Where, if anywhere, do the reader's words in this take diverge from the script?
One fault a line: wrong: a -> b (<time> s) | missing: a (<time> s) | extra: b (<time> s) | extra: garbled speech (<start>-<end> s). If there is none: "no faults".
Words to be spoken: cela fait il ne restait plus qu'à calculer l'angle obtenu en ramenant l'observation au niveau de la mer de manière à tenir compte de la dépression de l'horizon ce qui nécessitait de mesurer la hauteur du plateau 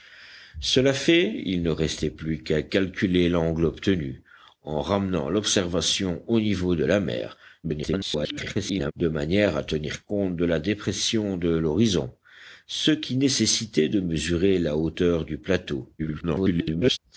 extra: garbled speech (7.6-8.9 s)
extra: garbled speech (16.0-17.0 s)